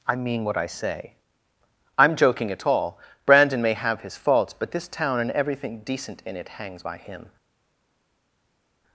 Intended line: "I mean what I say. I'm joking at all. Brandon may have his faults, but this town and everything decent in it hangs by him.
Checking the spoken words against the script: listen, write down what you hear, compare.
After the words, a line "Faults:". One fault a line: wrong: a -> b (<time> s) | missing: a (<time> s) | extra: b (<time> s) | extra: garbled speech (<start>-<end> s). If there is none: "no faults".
"I mean what I say. I'm joking at all. Brandon may have his faults, but this town and everything decent in it hangs by him.
Faults:
no faults